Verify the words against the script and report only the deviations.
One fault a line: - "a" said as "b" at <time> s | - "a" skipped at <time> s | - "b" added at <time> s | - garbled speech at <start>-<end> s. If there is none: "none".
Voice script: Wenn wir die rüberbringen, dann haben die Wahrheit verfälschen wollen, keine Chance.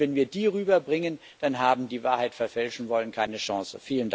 none